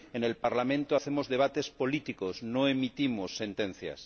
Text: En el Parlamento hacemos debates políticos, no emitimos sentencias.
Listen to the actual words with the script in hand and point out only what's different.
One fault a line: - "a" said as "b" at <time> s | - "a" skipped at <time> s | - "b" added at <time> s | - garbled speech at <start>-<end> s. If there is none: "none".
none